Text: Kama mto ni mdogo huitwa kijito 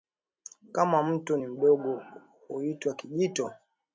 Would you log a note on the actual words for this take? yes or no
no